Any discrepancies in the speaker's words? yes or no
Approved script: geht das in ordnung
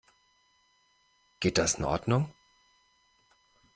no